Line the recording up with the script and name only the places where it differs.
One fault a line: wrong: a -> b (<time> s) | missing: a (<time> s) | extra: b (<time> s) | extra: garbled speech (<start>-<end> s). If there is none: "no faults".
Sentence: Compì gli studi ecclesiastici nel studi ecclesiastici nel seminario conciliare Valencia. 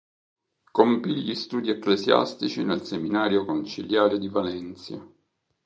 missing: studi ecclesiastici nel (2.8 s)
extra: di (4.2 s)